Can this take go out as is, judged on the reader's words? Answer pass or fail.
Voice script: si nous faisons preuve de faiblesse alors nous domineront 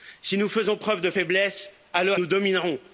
pass